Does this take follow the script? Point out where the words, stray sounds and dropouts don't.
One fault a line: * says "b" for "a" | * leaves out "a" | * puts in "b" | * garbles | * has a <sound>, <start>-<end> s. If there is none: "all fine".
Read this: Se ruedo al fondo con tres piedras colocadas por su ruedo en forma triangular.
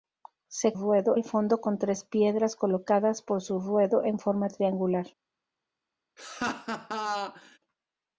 * has a laugh, 6.2-7.6 s